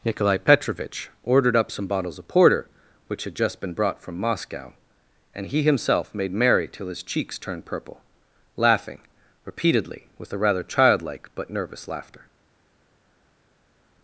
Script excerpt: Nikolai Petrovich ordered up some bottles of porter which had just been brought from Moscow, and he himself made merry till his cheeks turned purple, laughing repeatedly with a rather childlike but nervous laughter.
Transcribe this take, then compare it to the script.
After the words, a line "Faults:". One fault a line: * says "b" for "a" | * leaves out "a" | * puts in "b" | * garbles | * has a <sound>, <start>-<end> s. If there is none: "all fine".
Nikolai Petrovich ordered up some bottles of porter which had just been brought from Moscow, and he himself made merry till his cheeks turned purple, laughing repeatedly with a rather childlike but nervous laughter.
Faults:
all fine